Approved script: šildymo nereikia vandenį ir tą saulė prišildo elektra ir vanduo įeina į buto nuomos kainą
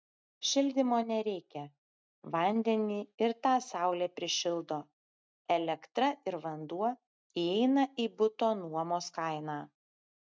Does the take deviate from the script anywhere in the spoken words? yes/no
no